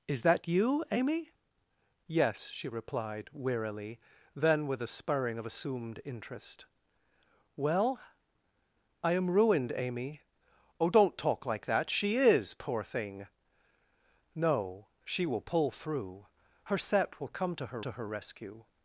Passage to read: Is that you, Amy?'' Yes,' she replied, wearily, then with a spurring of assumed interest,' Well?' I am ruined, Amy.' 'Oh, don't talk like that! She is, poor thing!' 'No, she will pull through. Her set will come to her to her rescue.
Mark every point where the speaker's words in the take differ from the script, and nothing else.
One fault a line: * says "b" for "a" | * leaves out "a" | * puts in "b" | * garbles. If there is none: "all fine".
all fine